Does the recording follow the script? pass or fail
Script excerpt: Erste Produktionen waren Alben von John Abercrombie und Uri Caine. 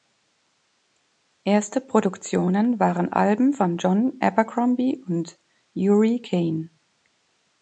pass